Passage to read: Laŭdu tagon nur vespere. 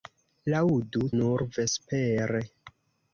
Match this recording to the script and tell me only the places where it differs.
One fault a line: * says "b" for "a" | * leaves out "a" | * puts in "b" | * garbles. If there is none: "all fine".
* leaves out "tagon"